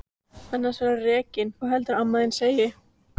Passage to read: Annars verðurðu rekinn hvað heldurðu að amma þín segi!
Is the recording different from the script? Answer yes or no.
no